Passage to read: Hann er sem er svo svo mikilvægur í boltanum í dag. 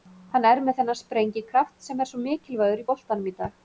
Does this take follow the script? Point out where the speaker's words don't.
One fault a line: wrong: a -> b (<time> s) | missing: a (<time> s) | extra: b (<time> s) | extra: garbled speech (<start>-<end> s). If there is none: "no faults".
extra: með þennan sprengikraft (0.7 s)
missing: svo (2.2 s)